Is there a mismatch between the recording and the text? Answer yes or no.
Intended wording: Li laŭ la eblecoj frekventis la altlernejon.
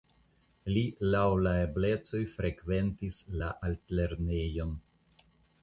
no